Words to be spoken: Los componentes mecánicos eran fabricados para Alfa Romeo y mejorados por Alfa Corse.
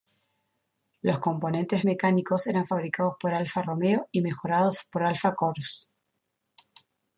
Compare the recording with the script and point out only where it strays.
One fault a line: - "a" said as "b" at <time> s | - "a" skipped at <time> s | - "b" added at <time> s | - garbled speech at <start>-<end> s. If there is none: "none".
- "para" said as "por" at 3.2 s